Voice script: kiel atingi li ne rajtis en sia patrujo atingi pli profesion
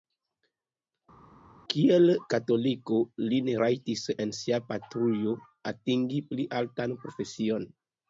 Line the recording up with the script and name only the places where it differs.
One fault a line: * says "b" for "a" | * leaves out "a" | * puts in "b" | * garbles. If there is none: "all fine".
* says "katoliko" for "atingi"
* puts in "altan"